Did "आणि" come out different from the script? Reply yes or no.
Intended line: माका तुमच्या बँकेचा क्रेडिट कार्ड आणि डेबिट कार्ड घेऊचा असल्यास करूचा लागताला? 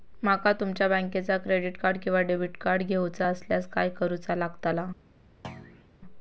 yes